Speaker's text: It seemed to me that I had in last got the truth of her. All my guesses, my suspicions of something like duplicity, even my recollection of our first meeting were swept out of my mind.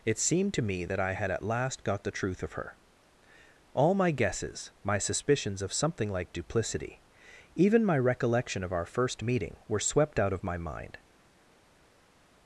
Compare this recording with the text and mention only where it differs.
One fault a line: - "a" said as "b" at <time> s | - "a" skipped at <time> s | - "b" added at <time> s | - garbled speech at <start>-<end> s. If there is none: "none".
- "in" said as "at" at 1.3 s